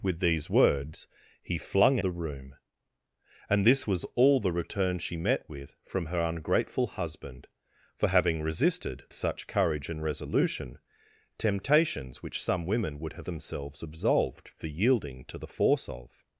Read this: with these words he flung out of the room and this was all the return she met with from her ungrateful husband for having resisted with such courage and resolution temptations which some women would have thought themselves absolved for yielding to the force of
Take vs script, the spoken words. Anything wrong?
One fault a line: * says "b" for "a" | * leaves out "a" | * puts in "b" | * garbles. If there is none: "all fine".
* leaves out "out of"
* leaves out "with"
* leaves out "thought"